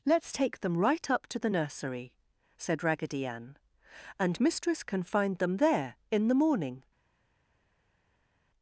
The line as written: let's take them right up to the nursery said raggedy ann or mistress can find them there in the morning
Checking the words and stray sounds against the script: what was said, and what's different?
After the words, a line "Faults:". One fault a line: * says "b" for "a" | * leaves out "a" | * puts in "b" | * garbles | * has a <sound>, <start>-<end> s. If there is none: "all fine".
let's take them right up to the nursery said raggedy ann and mistress can find them there in the morning
Faults:
* says "and" for "or"